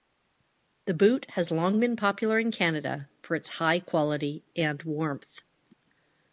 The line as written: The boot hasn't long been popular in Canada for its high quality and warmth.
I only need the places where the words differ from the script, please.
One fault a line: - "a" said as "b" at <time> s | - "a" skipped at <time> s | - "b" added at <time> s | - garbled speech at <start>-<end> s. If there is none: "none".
- "hasn't" said as "has" at 1.3 s